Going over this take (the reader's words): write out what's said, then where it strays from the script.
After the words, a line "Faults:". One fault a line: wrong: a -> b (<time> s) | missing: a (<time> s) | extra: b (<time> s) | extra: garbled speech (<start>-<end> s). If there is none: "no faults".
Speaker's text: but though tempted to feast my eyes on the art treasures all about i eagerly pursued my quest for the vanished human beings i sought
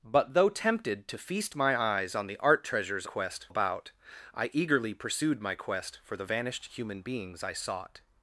but though tempted to feast my eyes on the art treasures quest about i eagerly pursued my quest for the vanished human beings i sought
Faults:
wrong: all -> quest (3.0 s)